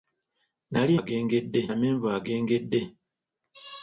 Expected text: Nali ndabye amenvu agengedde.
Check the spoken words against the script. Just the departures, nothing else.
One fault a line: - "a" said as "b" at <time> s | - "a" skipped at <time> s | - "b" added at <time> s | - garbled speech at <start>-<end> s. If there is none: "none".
- "ndabye" said as "agengedde" at 1.0 s